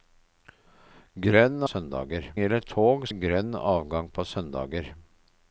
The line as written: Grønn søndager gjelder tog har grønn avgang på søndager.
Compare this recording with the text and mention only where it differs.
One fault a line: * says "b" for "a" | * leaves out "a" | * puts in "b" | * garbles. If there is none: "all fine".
all fine